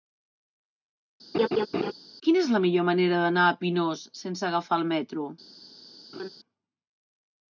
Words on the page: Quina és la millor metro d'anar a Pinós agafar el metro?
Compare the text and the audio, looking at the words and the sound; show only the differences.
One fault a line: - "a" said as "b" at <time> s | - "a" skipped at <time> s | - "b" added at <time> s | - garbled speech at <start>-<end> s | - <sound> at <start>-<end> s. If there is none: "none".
- laugh at 1.3-1.9 s
- "metro" said as "manera" at 2.9 s
- "sense" added at 4.2 s
- laugh at 6.1-6.3 s